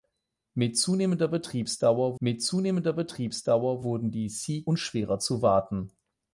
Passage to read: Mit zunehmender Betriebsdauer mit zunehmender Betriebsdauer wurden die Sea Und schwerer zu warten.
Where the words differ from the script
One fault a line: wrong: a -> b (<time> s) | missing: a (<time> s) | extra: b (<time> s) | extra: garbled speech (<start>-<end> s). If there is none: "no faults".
no faults